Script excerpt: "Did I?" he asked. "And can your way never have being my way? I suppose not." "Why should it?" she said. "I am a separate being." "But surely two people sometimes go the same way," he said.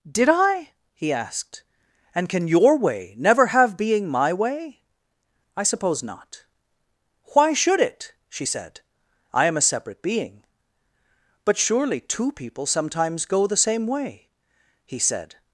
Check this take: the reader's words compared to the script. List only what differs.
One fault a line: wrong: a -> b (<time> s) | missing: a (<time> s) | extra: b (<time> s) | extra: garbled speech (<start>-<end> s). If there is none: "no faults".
no faults